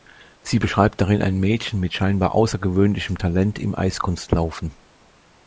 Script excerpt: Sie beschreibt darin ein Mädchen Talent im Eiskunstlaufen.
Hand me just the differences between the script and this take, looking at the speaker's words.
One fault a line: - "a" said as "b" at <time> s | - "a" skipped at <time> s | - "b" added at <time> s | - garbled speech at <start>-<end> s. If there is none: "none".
- "mit scheinbar außergewöhnlichem" added at 1.8 s